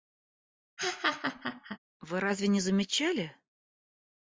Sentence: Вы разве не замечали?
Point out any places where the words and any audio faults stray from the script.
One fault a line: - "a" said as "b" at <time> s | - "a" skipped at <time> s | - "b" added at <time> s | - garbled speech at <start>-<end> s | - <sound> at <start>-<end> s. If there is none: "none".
- laugh at 0.8-1.8 s